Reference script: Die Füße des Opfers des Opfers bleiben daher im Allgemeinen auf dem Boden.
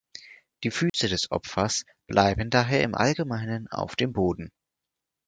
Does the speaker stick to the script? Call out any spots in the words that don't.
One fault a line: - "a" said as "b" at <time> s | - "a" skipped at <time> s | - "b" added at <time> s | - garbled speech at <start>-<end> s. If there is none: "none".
- "des Opfers" skipped at 1.8 s